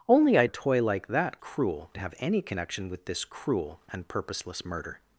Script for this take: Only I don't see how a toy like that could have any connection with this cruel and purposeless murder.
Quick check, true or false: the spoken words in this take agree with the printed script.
false